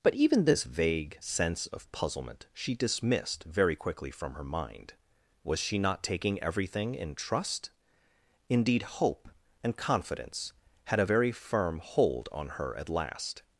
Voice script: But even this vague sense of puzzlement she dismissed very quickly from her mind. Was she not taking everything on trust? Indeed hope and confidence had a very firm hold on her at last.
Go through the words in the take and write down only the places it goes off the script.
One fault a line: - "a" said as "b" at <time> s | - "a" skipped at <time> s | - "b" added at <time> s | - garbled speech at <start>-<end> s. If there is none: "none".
- "on" said as "in" at 6.9 s